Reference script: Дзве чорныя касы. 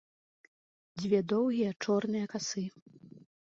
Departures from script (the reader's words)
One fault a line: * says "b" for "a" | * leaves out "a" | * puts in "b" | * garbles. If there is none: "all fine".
* puts in "доўгія"